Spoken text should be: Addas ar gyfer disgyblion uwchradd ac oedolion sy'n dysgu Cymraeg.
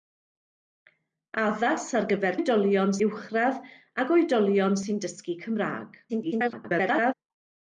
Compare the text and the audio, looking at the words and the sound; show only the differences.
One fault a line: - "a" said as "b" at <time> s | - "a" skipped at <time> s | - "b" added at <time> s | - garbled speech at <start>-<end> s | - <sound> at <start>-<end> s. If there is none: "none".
- "disgyblion" said as "oedolion" at 2.4 s
- garbled speech at 6.1-7.1 s